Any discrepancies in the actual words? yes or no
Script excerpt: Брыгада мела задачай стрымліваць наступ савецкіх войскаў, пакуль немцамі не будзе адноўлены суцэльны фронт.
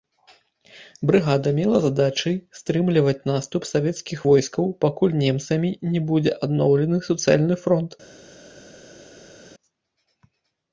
no